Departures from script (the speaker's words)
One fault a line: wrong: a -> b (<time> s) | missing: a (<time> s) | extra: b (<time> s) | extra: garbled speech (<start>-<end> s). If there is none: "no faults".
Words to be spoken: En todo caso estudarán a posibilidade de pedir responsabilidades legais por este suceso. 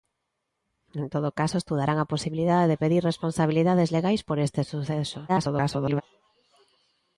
extra: garbled speech (5.3-6.0 s)